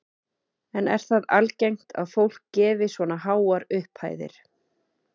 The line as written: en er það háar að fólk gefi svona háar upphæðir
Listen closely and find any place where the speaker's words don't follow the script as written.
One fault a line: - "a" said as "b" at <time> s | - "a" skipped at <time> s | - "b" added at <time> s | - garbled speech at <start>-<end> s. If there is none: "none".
- "háar" said as "algengt" at 1.4 s